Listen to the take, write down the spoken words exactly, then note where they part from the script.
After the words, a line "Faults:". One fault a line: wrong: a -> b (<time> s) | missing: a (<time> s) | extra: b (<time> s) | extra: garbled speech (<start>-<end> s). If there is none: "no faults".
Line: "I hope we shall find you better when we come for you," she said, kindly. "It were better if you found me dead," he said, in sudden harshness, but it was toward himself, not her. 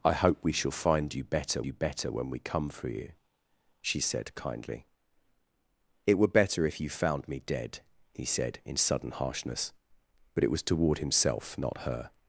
"I hope we shall find you better you better when we come for you," she said, kindly. "It were better if you found me dead," he said, in sudden harshness, but it was toward himself, not her.
Faults:
extra: you better (1.6 s)